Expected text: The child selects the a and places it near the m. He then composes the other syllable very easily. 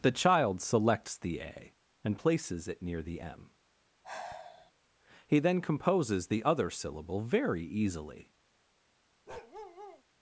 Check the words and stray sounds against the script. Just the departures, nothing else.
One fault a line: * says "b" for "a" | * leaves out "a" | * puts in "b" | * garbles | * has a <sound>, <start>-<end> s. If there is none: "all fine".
* has a sigh, 4.0-4.7 s
* has a bark, 9.3-10.0 s